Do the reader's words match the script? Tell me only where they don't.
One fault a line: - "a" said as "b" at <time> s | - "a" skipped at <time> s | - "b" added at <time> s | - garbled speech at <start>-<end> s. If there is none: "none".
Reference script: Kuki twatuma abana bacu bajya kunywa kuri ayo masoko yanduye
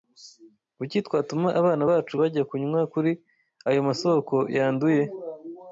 none